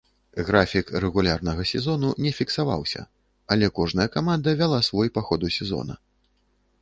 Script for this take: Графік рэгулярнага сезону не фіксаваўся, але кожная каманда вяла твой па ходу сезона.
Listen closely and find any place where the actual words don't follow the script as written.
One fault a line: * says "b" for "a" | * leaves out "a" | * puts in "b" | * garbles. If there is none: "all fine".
* says "свой" for "твой"